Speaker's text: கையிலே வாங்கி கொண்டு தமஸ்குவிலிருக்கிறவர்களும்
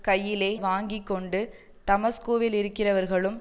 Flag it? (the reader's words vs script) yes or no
no